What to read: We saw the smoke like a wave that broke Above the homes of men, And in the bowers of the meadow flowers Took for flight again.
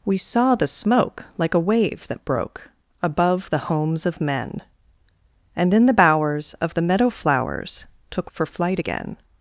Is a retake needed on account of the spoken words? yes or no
no